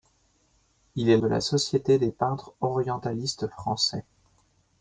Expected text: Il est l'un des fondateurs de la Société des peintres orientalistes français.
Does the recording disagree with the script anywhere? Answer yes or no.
yes